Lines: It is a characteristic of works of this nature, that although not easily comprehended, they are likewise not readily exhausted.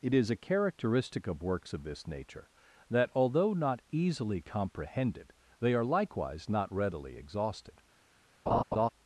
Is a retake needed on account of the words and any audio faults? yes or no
yes